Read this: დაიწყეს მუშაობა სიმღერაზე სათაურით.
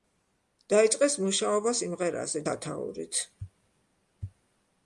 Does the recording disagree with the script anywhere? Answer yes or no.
no